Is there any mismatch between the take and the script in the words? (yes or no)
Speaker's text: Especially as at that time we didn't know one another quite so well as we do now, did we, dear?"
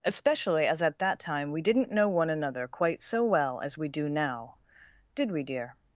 no